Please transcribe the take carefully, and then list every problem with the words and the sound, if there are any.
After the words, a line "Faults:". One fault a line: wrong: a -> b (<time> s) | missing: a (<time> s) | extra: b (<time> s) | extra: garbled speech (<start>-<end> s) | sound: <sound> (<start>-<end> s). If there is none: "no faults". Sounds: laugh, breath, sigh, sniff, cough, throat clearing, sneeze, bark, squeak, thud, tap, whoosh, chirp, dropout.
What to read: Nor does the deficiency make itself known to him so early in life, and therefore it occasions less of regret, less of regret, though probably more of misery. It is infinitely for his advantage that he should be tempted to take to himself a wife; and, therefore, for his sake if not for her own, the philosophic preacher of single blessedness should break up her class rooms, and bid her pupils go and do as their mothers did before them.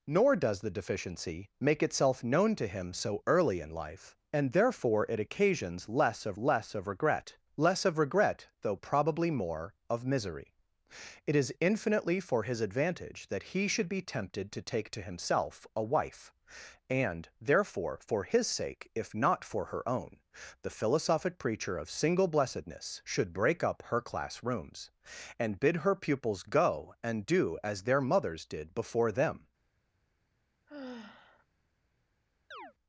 Nor does the deficiency make itself known to him so early in life, and therefore it occasions less of less of regret, less of regret, though probably more of misery. It is infinitely for his advantage that he should be tempted to take to himself a wife; and, therefore, for his sake if not for her own, the philosophic preacher of single blessedness should break up her class rooms, and bid her pupils go and do as their mothers did before them.
Faults:
extra: less of (6.4 s)
sound: sigh (30.7-31.5 s)
sound: chirp (32.5-32.7 s)